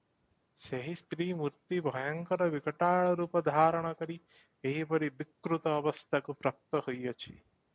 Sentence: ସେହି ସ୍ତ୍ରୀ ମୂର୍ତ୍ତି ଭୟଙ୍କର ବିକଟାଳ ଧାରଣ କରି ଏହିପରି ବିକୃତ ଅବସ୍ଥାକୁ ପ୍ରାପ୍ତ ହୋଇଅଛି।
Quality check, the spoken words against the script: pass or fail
fail